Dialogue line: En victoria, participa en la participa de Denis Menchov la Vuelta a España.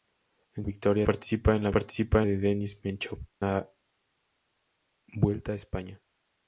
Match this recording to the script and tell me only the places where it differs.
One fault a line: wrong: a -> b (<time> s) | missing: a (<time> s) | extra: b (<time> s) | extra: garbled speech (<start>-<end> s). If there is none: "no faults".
no faults